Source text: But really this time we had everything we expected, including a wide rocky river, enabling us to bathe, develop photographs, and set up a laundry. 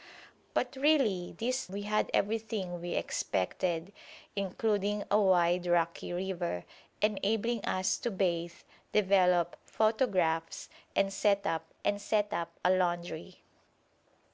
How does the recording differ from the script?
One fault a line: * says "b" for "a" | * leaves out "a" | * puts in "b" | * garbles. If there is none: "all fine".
* leaves out "time"
* puts in "and set up"